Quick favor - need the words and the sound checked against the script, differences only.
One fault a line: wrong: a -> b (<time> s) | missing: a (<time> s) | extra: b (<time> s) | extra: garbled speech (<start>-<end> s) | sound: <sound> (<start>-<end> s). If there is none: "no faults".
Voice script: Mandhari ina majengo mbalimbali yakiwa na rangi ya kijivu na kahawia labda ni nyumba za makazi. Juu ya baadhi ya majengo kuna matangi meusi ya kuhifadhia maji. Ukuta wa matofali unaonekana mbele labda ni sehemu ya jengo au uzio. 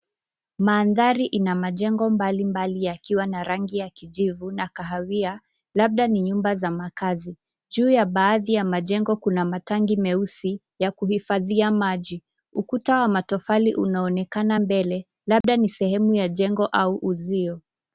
sound: dropout (15.4-15.4 s)